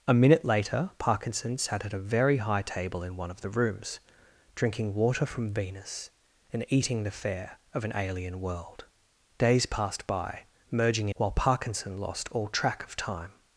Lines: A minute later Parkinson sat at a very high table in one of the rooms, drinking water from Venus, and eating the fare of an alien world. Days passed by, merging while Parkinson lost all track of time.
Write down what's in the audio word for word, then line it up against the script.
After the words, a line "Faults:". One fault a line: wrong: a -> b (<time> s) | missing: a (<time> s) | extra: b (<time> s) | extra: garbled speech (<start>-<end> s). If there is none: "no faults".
A minute later Parkinson sat at a very high table in one of the rooms, drinking water from Venus, and eating the fare of an alien world. Days passed by, merging while Parkinson lost all track of time.
Faults:
no faults